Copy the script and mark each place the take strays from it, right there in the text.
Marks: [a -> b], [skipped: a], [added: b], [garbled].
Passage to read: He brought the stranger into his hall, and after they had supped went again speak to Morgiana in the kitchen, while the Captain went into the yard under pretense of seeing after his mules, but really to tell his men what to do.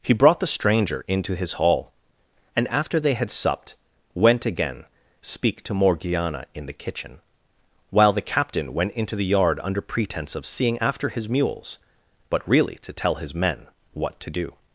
He brought the stranger into his hall, and after they had supped went again speak to Morgiana in the kitchen, while the Captain went into the yard under pretense of seeing after his mules, but really to tell his men what to do.